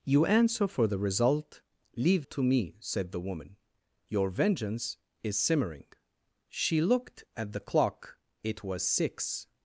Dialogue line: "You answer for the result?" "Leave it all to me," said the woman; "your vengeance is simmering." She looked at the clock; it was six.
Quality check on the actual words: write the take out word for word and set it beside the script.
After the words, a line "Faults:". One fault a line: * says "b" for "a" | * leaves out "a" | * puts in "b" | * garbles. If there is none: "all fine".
"You answer for the result?" "Leave to me," said the woman; "your vengeance is simmering." She looked at the clock; it was six.
Faults:
* leaves out "it all"